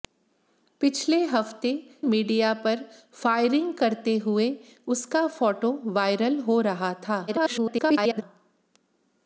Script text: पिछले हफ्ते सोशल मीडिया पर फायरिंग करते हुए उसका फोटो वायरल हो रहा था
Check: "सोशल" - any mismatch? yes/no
yes